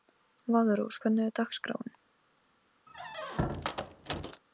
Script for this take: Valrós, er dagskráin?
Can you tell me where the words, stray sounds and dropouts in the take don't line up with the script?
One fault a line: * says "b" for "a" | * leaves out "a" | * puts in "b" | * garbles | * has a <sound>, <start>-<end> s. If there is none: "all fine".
* puts in "hvernig"
* has a squeak, 2.9-4.4 s